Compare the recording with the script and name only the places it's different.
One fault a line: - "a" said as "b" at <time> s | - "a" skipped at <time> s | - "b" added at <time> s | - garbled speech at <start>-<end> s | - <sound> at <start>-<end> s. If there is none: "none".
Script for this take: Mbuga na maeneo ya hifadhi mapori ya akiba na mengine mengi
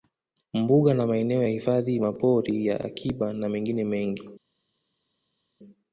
none